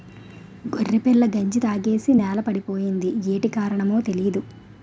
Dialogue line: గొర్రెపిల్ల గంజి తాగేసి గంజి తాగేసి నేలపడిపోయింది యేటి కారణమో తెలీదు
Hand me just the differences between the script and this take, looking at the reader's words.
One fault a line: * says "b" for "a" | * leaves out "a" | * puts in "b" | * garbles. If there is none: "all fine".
* leaves out "గంజి తాగేసి"